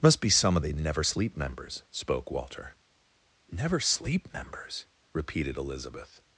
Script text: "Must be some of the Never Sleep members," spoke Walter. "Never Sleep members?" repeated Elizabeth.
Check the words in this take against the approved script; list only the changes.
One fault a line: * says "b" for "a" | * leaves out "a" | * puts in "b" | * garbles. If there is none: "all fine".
all fine